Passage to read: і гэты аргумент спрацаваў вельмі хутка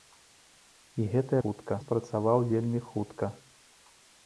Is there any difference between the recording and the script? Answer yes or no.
yes